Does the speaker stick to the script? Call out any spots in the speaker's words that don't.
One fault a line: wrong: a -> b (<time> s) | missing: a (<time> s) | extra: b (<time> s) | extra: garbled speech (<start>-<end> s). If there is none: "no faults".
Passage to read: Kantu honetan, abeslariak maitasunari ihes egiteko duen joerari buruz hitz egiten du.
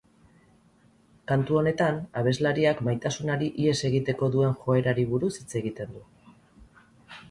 no faults